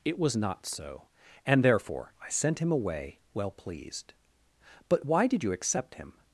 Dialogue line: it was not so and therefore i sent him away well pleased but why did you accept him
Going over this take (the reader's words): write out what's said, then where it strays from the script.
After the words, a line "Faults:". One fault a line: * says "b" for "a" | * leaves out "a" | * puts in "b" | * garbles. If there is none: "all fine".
it was not so and therefore i sent him away well pleased but why did you accept him
Faults:
all fine